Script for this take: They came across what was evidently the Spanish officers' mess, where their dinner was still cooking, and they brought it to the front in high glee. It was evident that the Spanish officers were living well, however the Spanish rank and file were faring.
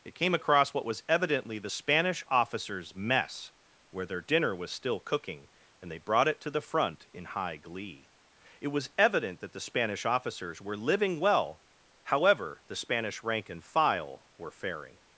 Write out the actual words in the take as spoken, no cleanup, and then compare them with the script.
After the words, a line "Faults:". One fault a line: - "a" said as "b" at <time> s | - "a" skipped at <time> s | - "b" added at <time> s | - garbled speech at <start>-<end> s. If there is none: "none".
It came across what was evidently the Spanish officers' mess, where their dinner was still cooking, and they brought it to the front in high glee. It was evident that the Spanish officers were living well, however the Spanish rank and file were faring.
Faults:
- "They" said as "It" at 0.0 s